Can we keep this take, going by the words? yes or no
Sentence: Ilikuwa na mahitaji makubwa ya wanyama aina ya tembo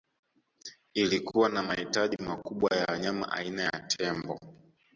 yes